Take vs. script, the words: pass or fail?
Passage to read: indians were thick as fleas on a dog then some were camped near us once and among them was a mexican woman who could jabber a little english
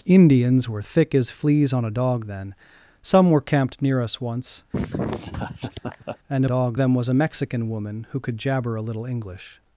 fail